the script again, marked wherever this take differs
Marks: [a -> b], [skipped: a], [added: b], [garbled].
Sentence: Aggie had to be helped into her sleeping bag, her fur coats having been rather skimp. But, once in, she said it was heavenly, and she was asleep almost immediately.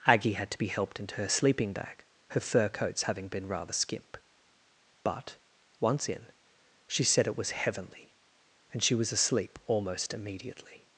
Aggie had to be helped into her sleeping bag, her fur coats having been rather skimp. But, once in, she said it was heavenly, and she was asleep almost immediately.